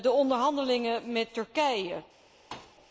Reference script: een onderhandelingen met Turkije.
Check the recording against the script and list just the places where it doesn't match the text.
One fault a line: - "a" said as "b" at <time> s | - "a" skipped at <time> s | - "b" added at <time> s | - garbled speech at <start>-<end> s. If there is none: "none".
- "een" said as "de" at 0.0 s